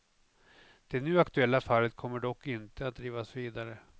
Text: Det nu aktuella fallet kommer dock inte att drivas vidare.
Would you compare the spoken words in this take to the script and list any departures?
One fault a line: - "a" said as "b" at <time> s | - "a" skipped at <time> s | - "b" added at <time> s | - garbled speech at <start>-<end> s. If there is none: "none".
none